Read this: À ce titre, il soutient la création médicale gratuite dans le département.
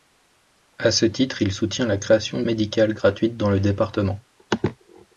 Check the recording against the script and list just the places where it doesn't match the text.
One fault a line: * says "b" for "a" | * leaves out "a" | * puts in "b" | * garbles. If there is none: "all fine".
all fine